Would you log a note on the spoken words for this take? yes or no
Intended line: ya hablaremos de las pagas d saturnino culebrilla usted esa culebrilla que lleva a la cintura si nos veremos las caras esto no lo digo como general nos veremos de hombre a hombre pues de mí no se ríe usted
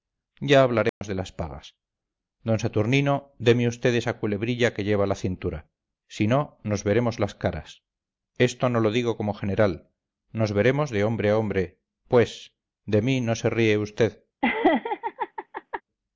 yes